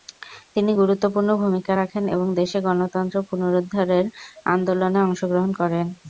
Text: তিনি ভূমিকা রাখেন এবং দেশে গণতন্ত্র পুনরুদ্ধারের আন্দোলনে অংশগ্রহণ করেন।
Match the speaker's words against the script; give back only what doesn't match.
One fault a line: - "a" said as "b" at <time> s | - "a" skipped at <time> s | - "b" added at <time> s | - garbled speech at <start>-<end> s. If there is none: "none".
- "গুরুত্বপূর্ণ" added at 0.8 s